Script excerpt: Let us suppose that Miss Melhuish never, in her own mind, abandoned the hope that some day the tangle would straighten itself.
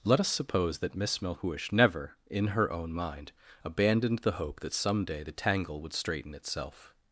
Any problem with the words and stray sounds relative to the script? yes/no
no